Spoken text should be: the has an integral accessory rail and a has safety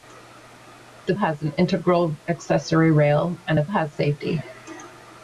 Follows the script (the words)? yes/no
yes